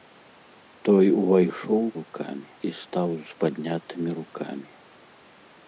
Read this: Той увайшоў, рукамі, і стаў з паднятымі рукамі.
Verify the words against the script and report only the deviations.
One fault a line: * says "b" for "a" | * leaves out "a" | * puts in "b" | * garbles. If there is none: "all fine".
all fine